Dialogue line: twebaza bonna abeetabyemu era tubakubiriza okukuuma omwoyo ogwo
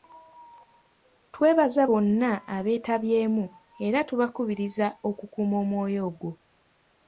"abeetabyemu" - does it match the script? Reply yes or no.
yes